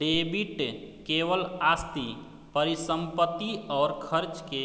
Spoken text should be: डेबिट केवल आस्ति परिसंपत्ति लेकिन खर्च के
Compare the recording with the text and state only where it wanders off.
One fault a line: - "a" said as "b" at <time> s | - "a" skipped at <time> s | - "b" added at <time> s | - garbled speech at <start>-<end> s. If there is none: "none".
- "लेकिन" said as "और" at 3.7 s